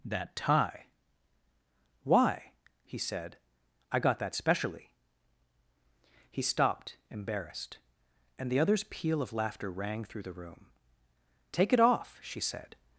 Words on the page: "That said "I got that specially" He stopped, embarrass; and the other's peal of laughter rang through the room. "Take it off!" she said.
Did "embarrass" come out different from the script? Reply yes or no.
yes